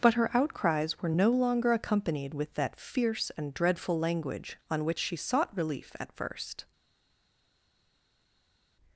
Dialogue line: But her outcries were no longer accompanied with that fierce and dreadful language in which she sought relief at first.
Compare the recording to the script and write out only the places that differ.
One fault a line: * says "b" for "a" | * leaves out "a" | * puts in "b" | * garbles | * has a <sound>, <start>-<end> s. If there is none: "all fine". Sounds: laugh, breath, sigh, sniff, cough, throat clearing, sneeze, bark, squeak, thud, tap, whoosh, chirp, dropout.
* says "on" for "in"